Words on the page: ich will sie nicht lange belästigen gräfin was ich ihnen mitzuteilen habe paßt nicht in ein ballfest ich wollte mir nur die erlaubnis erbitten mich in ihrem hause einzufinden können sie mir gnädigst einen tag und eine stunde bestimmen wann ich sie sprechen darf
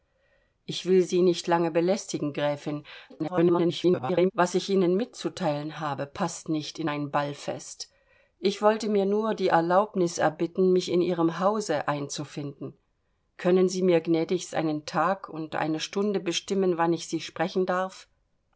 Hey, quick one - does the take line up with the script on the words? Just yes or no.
no